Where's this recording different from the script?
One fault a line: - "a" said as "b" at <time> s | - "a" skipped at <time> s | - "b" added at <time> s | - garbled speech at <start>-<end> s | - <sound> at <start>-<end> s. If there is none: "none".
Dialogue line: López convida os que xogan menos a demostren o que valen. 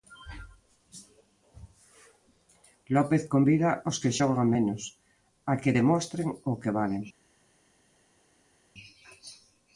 - "que" added at 5.6 s